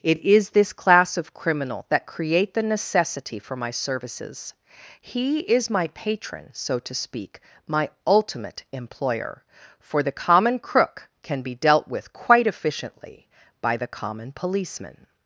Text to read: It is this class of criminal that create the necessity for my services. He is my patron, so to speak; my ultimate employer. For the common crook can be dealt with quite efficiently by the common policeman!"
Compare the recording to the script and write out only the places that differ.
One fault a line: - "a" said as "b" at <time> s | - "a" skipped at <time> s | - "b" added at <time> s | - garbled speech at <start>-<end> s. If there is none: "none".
none